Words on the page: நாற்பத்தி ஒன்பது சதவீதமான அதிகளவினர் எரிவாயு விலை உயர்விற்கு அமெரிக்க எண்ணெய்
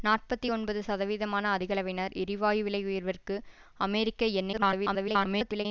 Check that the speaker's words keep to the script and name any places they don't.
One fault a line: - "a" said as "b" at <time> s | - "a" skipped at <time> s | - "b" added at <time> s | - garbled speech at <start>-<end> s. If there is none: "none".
- garbled speech at 4.5-5.7 s